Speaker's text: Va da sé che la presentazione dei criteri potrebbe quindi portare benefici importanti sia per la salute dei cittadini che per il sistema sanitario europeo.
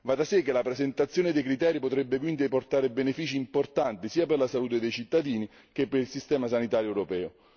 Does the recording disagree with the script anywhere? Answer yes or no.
no